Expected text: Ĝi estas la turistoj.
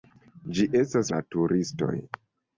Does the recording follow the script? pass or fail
pass